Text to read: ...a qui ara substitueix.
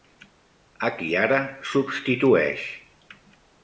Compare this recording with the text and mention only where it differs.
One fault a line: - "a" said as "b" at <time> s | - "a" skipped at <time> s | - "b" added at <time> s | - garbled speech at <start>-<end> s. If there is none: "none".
none